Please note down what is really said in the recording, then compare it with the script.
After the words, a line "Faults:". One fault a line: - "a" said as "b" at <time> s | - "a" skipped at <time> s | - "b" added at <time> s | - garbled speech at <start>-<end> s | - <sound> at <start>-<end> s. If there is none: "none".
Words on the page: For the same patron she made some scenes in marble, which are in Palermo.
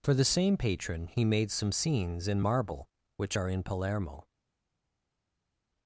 For the same patron he made some scenes in marble, which are in Palermo.
Faults:
- "she" said as "he" at 1.1 s